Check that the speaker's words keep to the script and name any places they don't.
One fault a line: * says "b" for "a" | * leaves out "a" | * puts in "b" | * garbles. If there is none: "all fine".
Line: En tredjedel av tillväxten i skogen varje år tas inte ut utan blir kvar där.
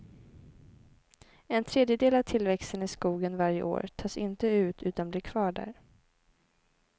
all fine